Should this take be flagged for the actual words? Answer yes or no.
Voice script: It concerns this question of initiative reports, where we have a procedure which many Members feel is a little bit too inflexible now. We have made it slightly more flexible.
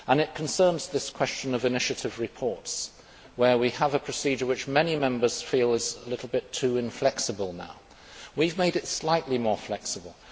no